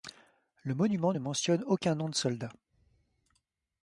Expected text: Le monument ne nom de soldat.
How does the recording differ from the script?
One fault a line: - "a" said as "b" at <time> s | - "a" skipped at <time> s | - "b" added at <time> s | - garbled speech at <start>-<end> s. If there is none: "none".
- "mentionne aucun" added at 1.2 s